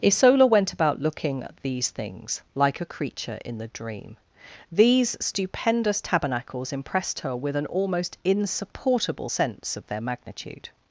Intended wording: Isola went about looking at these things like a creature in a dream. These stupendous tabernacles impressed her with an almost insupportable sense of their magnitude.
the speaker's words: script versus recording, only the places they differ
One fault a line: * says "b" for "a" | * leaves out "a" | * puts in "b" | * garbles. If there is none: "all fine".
* says "the" for "a"